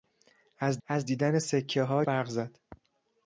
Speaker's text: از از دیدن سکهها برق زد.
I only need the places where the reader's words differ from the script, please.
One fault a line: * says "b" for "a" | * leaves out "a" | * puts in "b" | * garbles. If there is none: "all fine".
all fine